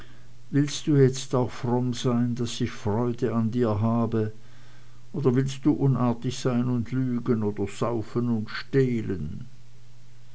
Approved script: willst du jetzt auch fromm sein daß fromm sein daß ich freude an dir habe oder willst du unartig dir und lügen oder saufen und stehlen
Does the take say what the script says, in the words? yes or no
no